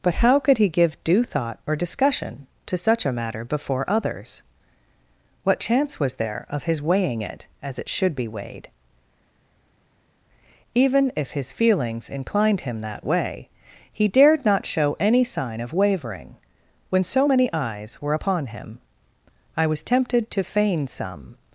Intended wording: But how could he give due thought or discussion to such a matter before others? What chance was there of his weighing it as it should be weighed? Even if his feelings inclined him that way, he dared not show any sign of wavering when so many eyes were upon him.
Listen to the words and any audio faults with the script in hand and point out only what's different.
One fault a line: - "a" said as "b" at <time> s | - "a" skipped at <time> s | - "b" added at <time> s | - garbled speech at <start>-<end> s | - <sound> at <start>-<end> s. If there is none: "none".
- "I was tempted to feign some" added at 19.6 s